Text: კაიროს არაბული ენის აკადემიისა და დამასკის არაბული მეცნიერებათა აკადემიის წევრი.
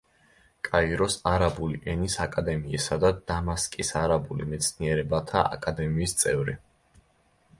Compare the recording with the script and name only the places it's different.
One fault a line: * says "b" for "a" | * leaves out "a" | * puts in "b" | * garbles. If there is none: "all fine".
all fine